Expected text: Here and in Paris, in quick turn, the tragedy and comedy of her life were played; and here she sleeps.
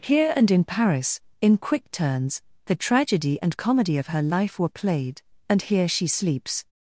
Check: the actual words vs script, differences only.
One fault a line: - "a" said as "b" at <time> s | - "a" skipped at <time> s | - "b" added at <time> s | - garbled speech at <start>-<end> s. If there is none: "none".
- "turn" said as "turns" at 1.9 s